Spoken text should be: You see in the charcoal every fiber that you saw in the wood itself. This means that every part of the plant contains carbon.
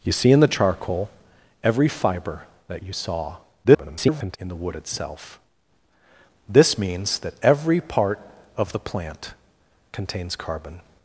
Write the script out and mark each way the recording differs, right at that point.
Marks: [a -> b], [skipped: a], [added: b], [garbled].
You see in the charcoal every fiber that you saw [garbled] in the wood itself. This means that every part of the plant contains carbon.